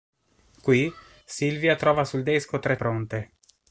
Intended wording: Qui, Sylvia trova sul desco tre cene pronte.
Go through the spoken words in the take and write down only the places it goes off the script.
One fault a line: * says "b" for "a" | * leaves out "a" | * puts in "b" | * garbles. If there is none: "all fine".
* leaves out "cene"